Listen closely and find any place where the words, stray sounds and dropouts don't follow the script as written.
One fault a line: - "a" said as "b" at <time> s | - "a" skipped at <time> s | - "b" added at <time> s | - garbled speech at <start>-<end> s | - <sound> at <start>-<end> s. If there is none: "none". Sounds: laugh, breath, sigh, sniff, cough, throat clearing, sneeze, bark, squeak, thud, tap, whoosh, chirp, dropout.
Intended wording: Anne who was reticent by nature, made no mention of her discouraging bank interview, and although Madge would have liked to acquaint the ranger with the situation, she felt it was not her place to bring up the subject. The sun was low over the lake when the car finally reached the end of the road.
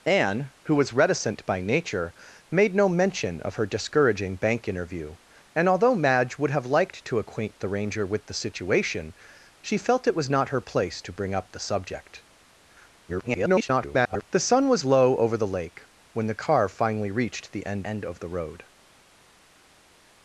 - garbled speech at 13.1-14.3 s
- "end" added at 17.8 s